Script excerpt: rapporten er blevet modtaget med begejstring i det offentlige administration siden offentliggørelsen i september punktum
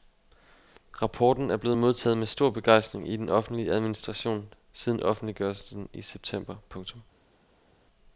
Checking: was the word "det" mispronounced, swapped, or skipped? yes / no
yes